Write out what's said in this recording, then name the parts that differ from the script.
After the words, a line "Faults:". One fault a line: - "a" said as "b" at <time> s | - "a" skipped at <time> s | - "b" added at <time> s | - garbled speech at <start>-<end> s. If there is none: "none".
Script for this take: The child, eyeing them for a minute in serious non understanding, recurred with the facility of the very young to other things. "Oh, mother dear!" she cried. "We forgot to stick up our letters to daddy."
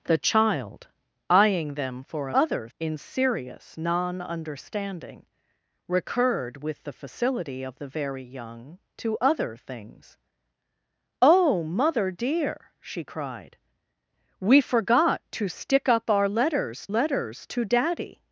The child, eyeing them for a other in serious non understanding, recurred with the facility of the very young to other things. "Oh, mother dear!" she cried. "We forgot to stick up our letters letters to daddy."
Faults:
- "minute" said as "other" at 2.3 s
- "letters" added at 16.9 s